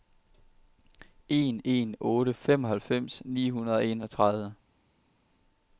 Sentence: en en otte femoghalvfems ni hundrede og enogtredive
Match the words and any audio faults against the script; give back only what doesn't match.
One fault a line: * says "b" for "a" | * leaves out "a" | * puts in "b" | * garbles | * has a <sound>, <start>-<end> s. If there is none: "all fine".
all fine